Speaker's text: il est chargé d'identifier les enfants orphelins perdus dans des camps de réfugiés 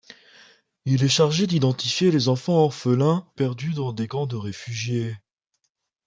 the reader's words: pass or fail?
pass